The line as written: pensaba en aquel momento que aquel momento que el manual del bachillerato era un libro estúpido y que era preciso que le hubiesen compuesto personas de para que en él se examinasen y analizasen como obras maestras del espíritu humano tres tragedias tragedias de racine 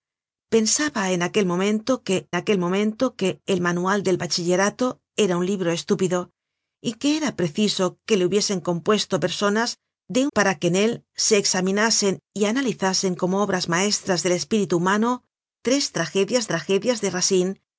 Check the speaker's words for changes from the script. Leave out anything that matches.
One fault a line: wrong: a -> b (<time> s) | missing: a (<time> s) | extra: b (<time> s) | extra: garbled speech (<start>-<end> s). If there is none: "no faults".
no faults